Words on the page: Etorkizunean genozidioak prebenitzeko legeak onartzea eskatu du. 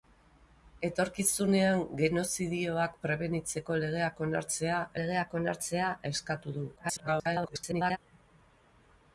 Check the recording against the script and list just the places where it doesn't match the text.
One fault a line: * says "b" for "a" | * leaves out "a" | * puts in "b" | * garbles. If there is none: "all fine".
* puts in "legeak onartzea"
* garbles